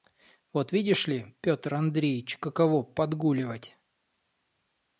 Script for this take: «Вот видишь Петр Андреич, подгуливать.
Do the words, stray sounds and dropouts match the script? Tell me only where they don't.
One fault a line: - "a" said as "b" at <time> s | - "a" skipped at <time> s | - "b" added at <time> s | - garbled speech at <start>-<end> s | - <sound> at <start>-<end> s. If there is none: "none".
- "ли" added at 1.1 s
- "каково" added at 2.4 s